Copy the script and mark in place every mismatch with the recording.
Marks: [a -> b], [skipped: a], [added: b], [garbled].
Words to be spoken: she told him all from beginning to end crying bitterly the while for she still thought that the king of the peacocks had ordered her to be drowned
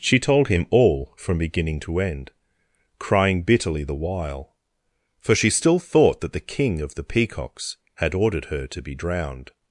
she told him all from beginning to end crying bitterly the while for she still thought that the king of the peacocks had ordered her to be drowned